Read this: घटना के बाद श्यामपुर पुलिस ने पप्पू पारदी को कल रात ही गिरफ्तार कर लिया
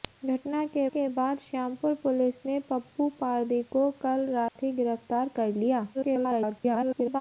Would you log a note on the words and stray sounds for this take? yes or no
yes